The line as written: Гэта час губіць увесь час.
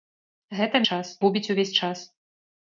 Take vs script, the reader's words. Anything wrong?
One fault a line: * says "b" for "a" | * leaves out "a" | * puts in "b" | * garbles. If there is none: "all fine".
all fine